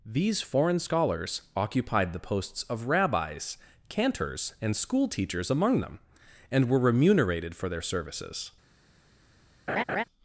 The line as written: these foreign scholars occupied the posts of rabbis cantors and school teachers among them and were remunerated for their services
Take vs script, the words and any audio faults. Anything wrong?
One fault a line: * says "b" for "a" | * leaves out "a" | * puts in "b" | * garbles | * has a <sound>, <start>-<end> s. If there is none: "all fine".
* has a laugh, 9.7-10.0 s